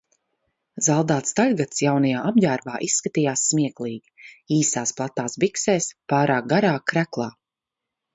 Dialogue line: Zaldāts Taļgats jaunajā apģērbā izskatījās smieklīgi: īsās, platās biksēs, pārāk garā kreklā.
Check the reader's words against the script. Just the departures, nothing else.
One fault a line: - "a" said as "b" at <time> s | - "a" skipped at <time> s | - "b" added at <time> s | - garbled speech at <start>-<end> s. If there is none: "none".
none